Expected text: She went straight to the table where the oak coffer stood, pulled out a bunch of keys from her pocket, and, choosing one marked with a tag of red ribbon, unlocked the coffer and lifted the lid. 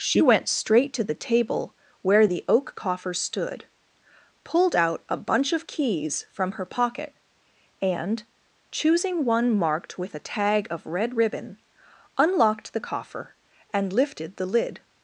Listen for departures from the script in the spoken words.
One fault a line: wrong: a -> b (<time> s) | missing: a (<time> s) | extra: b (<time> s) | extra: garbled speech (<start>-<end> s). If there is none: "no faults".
no faults